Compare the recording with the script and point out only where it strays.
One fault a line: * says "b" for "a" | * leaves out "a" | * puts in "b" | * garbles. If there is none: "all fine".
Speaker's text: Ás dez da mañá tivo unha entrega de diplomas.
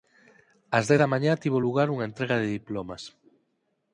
* puts in "lugar"